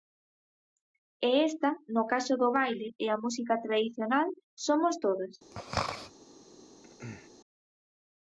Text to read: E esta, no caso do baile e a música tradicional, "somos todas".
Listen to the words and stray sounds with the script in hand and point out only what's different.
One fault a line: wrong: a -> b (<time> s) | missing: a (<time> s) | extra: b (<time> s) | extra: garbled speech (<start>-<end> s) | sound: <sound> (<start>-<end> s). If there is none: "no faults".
sound: throat clearing (5.5-6.1 s)
sound: throat clearing (6.8-7.3 s)